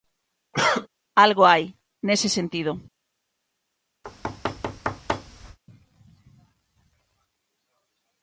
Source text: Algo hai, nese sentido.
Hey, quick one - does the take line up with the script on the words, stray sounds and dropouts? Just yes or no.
no